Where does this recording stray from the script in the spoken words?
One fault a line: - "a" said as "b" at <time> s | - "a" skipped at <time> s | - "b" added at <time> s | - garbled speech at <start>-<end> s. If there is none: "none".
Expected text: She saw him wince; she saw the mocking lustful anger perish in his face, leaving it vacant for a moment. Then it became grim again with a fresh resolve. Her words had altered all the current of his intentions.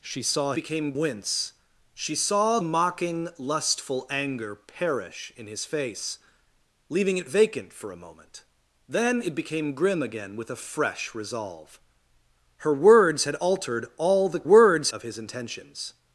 - "him" said as "became" at 0.5 s
- "the" skipped at 2.6 s
- "current" said as "words" at 14.4 s